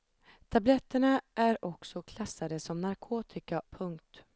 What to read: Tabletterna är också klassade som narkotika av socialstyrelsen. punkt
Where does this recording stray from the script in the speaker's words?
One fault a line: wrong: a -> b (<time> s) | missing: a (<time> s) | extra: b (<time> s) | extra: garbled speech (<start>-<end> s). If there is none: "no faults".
missing: av socialstyrelsen (3.6 s)